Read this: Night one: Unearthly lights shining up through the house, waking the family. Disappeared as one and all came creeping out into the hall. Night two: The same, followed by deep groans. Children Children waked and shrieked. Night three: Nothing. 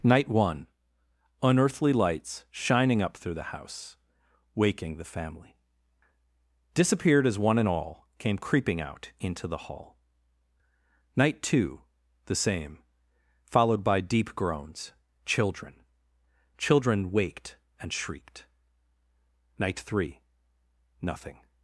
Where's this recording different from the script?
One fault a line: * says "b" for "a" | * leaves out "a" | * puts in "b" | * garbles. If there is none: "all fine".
all fine